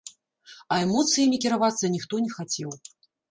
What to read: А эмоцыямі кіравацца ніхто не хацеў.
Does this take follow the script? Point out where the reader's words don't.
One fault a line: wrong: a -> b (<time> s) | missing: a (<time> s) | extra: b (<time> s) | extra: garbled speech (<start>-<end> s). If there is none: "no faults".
no faults